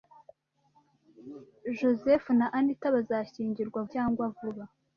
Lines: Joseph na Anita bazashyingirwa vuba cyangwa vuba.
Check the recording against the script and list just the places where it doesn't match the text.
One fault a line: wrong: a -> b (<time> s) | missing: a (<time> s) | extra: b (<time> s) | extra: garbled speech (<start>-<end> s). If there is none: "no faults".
missing: vuba (3.8 s)